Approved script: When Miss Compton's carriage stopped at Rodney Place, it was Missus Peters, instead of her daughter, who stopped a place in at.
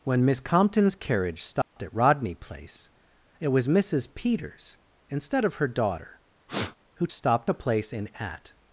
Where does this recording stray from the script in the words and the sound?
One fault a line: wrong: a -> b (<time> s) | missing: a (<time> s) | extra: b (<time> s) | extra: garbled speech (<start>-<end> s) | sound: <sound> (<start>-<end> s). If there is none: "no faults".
sound: dropout (1.6-1.8 s)
sound: sniff (6.5-6.8 s)